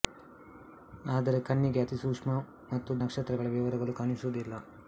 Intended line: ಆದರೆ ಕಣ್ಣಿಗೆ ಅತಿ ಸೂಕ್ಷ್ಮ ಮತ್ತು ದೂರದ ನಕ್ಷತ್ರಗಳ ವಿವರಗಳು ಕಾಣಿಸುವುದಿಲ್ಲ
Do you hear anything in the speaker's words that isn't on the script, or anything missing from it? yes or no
yes